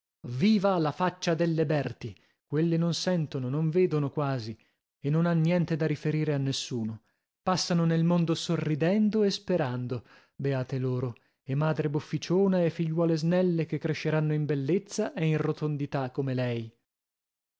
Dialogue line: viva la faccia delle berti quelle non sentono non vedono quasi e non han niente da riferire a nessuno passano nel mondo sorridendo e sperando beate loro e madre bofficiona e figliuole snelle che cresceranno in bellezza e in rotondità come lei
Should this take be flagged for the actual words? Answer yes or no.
no